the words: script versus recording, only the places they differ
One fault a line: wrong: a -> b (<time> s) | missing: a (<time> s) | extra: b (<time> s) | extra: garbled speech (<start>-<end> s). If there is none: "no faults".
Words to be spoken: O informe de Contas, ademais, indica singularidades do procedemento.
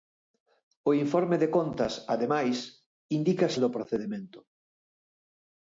missing: singularidades (3.5 s)